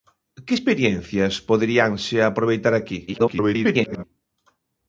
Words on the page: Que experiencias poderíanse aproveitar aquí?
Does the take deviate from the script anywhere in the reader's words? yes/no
yes